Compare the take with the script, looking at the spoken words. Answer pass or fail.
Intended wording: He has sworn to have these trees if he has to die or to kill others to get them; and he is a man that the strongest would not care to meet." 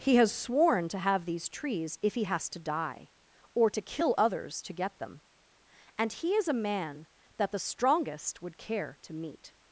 fail